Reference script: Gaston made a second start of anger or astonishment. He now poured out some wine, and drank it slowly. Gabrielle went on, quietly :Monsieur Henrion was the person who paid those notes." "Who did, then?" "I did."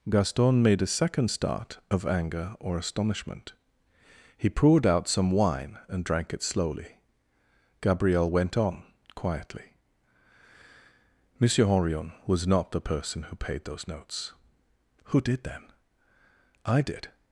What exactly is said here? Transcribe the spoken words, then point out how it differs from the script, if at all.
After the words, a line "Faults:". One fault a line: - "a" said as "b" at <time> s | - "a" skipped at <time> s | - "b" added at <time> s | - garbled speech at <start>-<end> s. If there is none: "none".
Gaston made a second start of anger or astonishment. He poured out some wine, and drank it slowly. Gabrielle went on, quietly :Monsieur Henrion was not the person who paid those notes." "Who did, then?" "I did."
Faults:
- "now" skipped at 4.5 s
- "not" added at 12.5 s